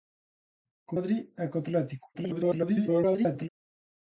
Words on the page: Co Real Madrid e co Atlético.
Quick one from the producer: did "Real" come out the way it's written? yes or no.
no